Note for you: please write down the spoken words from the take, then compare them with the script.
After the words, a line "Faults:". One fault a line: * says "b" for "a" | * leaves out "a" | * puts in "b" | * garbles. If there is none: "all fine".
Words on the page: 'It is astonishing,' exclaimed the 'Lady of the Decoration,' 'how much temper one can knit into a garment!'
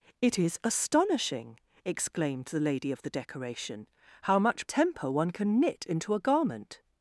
'It is astonishing,' exclaimed the 'Lady of the Decoration,' 'how much temper one can knit into a garment!'
Faults:
all fine